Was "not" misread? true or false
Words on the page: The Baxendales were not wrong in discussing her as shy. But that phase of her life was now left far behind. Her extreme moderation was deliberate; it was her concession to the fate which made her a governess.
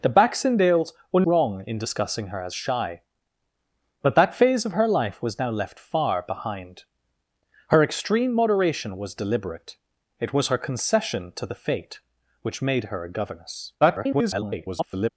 true